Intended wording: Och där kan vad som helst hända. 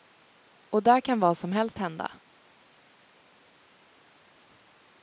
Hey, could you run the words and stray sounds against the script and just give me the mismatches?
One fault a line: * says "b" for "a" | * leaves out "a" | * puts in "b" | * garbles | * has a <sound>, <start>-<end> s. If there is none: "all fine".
all fine